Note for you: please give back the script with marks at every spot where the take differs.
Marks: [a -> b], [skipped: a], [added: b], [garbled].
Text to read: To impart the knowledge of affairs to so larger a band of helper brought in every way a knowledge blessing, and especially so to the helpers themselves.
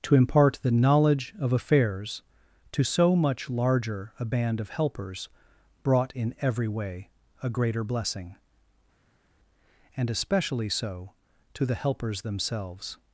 To impart the knowledge of affairs to so [added: much] larger a band of [helper -> helpers] brought in every way a [knowledge -> greater] blessing, and especially so to the helpers themselves.